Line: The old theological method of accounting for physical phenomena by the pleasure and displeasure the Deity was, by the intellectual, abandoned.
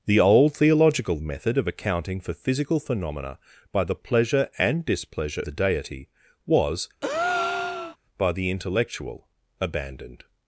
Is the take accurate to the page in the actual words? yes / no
yes